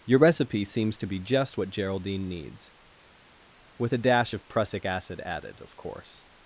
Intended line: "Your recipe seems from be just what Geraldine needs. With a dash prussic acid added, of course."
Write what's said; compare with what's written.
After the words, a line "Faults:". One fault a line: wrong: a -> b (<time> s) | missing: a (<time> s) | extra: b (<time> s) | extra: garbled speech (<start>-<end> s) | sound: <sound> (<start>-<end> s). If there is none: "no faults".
"Your recipe seems to be just what Geraldine needs. With a dash of prussic acid added, of course."
Faults:
wrong: from -> to (1.0 s)
extra: of (4.3 s)